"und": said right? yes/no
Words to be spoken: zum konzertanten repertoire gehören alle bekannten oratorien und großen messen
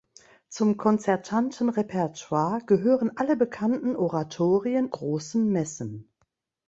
no